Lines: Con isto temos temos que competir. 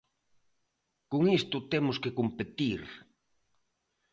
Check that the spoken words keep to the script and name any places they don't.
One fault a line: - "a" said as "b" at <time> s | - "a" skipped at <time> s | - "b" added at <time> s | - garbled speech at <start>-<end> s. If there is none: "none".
- "temos" skipped at 2.0 s